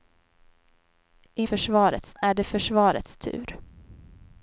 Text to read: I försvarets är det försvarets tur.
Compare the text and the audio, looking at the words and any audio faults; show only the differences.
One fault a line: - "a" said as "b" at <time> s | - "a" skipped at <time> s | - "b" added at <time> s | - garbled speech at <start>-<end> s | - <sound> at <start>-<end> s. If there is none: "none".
none